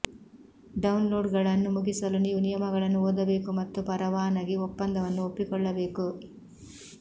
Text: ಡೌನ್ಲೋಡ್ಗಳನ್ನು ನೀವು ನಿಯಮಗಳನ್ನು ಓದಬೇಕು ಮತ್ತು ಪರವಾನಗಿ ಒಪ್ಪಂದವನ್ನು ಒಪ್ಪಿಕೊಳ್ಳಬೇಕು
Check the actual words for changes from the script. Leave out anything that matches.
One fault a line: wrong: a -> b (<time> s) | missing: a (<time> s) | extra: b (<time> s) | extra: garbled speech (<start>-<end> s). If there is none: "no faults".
extra: ಮುಗಿಸಲು (1.8 s)